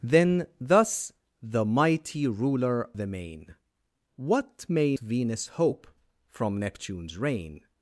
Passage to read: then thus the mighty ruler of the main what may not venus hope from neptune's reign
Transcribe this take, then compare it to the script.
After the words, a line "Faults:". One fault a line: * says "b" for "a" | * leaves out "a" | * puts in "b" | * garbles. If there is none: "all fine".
then thus the mighty ruler the main what may venus hope from neptune's reign
Faults:
* leaves out "of"
* leaves out "not"